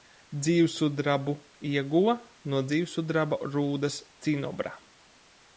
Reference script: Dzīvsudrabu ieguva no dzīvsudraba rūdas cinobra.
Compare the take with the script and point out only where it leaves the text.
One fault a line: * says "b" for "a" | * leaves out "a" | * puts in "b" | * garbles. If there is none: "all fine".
all fine